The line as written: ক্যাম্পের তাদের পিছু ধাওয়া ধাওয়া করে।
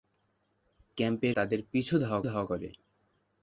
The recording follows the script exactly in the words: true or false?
true